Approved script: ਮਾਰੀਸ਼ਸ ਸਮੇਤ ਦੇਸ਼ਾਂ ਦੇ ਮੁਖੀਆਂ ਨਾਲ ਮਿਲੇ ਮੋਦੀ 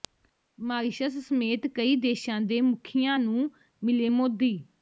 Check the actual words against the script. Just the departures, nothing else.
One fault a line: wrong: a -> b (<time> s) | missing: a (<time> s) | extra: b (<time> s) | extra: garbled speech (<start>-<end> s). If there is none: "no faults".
extra: ਕਈ (1.7 s)
wrong: ਨਾਲ -> ਨੂੰ (3.2 s)